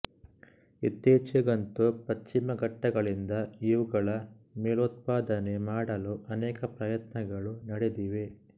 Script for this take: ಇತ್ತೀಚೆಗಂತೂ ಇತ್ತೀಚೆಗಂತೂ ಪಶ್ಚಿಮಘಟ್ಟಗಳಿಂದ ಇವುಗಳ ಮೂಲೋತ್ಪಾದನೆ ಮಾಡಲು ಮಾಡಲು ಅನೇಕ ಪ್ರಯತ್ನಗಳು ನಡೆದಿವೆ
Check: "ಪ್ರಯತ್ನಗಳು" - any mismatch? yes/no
no